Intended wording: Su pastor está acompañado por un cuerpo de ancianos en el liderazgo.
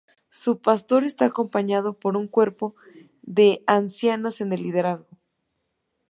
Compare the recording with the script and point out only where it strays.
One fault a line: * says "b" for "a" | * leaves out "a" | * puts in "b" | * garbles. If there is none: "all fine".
all fine